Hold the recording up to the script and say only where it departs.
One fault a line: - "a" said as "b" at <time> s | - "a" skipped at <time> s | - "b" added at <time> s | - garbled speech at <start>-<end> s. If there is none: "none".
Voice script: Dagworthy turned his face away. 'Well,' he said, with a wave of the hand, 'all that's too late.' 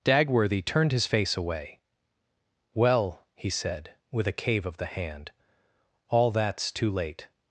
- "wave" said as "cave" at 4.3 s